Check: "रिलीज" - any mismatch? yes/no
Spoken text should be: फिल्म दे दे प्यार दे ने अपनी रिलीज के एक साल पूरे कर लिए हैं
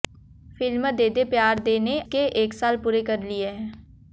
yes